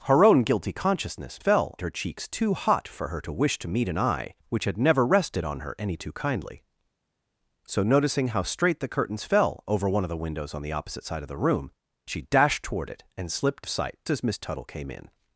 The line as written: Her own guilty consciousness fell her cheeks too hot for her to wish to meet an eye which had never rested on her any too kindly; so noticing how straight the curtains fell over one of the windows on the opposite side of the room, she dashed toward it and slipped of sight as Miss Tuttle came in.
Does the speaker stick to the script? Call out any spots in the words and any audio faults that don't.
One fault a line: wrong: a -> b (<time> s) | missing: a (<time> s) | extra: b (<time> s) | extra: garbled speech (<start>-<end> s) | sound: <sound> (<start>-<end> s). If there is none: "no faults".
no faults